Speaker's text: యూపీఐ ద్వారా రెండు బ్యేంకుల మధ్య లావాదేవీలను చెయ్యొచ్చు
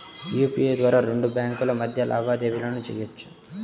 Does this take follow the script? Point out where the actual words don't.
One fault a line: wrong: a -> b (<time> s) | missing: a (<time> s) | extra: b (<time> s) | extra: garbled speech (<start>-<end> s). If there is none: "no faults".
no faults